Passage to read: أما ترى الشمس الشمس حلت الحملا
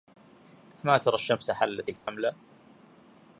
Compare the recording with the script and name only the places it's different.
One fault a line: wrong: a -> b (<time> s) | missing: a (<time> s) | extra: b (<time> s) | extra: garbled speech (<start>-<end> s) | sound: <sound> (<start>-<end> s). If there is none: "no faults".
missing: الشمس (1.5 s)
sound: dropout (2.0-2.1 s)